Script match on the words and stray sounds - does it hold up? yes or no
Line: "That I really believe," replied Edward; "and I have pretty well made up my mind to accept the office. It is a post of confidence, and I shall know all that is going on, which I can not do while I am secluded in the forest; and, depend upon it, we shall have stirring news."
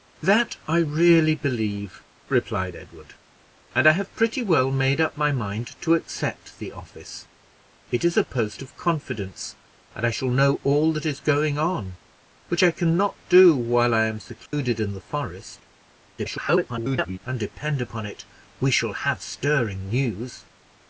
no